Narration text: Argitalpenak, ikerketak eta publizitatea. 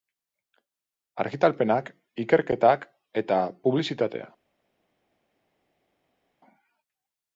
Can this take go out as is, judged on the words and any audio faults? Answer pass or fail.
pass